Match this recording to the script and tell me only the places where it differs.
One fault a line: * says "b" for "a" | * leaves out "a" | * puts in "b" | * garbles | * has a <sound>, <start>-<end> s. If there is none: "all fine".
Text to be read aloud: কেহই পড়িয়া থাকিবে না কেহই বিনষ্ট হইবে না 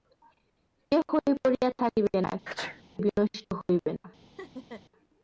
* leaves out "কেহই"
* has a sneeze, 2.5-2.8 s
* has a laugh, 4.4-4.8 s